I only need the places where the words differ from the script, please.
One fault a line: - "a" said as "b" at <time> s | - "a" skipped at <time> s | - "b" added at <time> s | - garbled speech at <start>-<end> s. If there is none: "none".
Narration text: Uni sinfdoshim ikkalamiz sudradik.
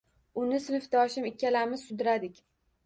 none